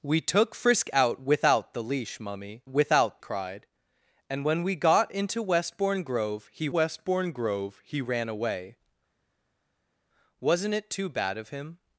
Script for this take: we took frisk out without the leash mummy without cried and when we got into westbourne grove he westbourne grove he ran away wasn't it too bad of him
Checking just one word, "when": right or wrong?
right